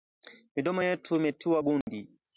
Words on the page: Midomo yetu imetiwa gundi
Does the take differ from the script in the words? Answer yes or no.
no